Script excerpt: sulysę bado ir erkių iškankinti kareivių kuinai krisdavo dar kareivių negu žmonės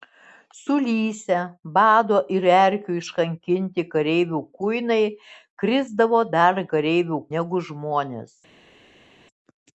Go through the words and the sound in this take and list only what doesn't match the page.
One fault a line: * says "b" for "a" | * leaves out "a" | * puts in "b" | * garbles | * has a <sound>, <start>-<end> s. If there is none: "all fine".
all fine